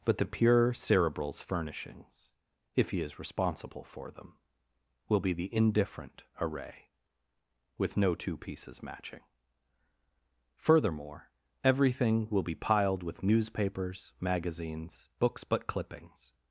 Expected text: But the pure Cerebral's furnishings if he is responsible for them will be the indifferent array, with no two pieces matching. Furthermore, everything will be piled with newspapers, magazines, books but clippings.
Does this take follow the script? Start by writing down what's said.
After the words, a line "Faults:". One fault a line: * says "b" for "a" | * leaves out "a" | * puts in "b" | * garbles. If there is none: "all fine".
But the pure Cerebral's furnishings if he is responsible for them will be the indifferent array, with no two pieces matching. Furthermore, everything will be piled with newspapers, magazines, books but clippings.
Faults:
all fine